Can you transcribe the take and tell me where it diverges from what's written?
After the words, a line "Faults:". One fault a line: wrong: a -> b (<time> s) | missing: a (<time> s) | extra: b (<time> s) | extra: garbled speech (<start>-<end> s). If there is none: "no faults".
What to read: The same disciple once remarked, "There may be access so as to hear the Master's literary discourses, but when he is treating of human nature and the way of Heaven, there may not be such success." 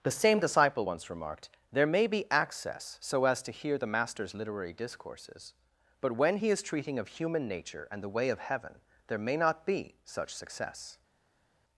The same disciple once remarked, "There may be access so as to hear the Master's literary discourses, but when he is treating of human nature and the way of Heaven, there may not be such success."
Faults:
no faults